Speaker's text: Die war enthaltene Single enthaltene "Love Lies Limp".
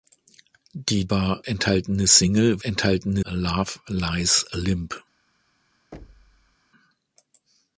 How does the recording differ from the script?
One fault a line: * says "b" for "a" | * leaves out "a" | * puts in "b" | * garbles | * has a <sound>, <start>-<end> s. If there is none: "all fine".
* has a thud, 5.9-6.6 s